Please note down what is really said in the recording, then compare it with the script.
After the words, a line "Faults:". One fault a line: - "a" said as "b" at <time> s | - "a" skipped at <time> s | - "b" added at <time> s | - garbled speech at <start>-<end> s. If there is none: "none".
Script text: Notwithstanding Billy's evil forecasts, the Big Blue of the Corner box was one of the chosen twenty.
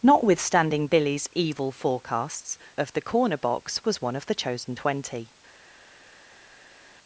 Notwithstanding Billy's evil forecasts, of the Corner box was one of the chosen twenty.
Faults:
- "the Big Blue" skipped at 2.6 s